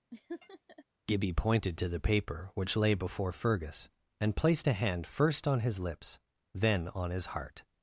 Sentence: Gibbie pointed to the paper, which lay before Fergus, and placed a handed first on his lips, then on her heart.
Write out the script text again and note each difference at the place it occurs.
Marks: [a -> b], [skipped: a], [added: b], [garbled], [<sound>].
[laugh] Gibbie pointed to the paper, which lay before Fergus, and placed a [handed -> hand] first on his lips, then on [her -> his] heart.